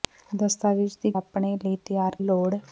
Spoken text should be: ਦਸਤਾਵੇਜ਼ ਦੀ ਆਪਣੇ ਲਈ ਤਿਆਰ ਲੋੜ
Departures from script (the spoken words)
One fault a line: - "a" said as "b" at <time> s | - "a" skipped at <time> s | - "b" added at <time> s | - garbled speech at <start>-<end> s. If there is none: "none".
none